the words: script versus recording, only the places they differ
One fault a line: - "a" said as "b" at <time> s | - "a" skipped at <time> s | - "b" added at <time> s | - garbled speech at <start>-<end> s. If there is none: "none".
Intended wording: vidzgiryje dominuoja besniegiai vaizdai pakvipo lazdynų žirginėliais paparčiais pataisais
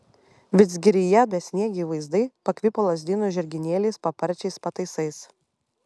- "dominuoja" skipped at 1.2 s